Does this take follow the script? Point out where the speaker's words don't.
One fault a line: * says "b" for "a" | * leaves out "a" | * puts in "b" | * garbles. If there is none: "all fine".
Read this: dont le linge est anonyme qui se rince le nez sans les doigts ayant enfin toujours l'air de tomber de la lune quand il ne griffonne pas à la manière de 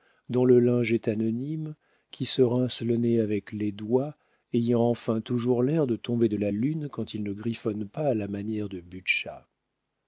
* says "avec" for "sans"